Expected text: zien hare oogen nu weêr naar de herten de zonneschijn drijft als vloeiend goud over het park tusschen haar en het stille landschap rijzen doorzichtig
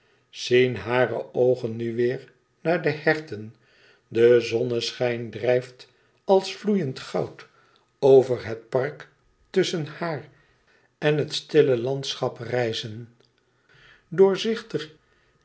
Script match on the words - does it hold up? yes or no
yes